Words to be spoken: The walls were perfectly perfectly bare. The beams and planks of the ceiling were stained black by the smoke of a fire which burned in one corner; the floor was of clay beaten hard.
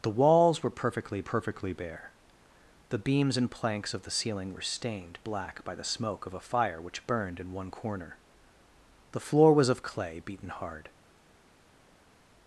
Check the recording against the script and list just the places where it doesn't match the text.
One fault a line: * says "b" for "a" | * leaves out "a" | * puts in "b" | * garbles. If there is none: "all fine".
all fine